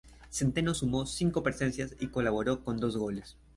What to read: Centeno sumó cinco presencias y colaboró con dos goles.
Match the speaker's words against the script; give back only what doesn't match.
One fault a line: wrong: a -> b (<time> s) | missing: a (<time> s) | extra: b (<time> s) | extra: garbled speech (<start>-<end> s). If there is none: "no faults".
no faults